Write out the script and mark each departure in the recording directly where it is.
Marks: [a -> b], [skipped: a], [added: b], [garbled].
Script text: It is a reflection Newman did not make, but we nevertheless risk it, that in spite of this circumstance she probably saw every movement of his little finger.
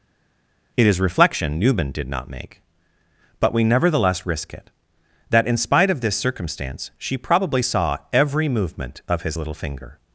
It is [skipped: a] reflection Newman did not make, but we nevertheless risk it, that in spite of this circumstance she probably saw every movement of his little finger.